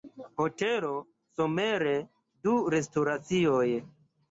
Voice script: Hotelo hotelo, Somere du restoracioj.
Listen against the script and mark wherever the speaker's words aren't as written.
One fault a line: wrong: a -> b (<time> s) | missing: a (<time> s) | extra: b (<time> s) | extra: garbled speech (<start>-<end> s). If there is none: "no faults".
missing: hotelo (0.9 s)